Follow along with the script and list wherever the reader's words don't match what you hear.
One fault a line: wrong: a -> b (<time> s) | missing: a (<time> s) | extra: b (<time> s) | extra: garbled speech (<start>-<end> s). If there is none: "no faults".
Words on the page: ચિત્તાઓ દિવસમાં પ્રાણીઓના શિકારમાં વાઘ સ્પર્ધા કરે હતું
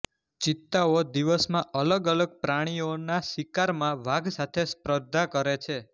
extra: અલગ અલગ (1.8 s)
extra: સાથે (4.3 s)
wrong: હતું -> છે (5.6 s)